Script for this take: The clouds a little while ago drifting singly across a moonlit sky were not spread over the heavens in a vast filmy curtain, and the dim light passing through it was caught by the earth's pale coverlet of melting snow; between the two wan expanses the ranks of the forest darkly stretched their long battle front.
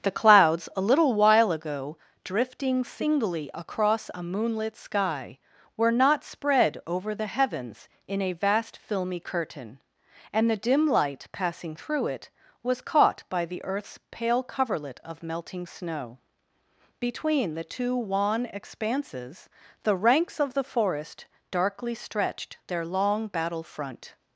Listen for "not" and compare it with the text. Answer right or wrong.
right